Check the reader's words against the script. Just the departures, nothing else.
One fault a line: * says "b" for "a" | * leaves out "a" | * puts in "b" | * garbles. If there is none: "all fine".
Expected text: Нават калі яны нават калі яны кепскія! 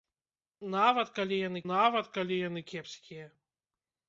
all fine